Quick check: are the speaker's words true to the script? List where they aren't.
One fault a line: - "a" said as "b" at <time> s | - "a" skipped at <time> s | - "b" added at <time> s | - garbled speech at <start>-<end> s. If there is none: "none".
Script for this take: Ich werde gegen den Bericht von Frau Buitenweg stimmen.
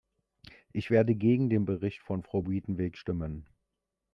none